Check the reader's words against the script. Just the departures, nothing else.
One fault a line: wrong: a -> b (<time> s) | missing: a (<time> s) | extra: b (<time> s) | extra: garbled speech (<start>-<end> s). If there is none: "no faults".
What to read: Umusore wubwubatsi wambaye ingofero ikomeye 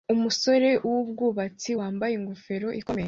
no faults